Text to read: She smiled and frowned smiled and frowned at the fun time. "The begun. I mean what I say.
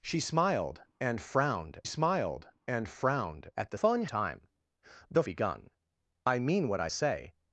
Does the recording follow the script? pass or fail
pass